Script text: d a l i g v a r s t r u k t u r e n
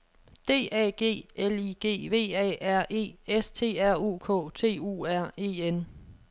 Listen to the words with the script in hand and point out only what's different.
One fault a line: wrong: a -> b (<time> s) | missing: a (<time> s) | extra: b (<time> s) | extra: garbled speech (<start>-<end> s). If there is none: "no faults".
extra: g (0.9 s)
extra: e (2.9 s)